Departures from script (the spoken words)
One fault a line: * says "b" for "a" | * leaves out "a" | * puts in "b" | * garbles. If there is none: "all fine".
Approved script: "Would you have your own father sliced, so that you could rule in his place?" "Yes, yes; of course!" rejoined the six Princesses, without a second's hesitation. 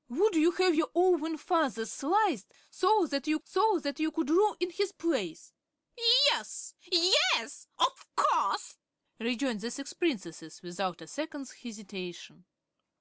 * puts in "so that you"